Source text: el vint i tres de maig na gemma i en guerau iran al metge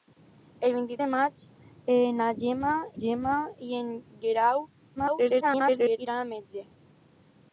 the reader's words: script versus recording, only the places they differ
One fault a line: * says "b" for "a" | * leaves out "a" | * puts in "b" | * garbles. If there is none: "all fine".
* leaves out "tres"
* puts in "gemma"
* garbles